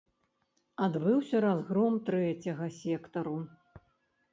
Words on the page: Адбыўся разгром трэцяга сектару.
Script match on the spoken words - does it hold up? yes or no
yes